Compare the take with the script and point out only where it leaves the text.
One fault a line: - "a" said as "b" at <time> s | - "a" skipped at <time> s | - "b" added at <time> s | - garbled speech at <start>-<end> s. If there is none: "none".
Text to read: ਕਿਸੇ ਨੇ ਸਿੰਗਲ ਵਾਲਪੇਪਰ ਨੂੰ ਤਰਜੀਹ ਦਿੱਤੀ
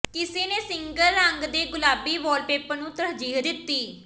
- "ਰੰਗ ਦੇ ਗੁਲਾਬੀ" added at 1.1 s